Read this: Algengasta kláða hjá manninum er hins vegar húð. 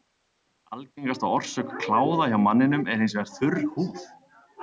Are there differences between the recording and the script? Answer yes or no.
yes